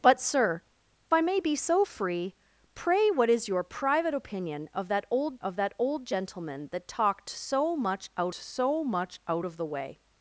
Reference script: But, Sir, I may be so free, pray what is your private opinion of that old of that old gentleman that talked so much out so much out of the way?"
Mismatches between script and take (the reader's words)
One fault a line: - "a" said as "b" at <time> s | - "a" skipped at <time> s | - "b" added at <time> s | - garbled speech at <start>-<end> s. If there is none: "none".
none